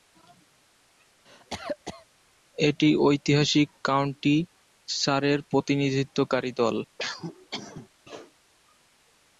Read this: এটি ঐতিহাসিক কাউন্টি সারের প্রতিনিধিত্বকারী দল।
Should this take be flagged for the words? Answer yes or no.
no